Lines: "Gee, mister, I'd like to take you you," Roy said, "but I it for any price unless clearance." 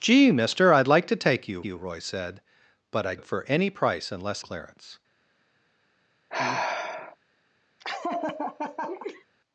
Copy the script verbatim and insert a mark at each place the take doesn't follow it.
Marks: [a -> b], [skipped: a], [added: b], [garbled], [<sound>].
"Gee, mister, I'd like to take you you," Roy said, "but I it for any price unless clearance." [sigh] [laugh]